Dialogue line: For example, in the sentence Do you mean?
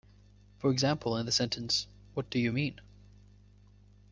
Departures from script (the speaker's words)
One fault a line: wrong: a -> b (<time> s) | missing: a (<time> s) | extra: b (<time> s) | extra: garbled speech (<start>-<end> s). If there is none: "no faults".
extra: What (2.1 s)